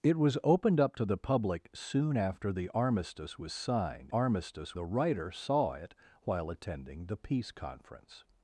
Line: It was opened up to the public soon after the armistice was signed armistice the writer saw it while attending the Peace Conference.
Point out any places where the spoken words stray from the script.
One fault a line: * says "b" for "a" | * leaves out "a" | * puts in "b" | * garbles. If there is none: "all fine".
all fine